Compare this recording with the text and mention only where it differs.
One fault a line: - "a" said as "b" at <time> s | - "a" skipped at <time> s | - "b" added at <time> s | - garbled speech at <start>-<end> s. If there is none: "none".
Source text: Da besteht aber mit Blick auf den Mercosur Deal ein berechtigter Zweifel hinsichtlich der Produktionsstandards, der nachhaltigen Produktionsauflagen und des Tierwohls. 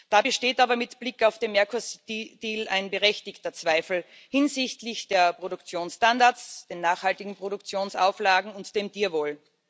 none